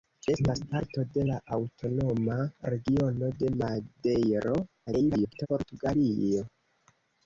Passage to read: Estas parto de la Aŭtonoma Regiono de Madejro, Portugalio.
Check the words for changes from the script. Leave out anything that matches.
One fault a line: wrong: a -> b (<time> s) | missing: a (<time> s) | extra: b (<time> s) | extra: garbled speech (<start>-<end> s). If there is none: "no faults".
extra: garbled speech (4.9-5.5 s)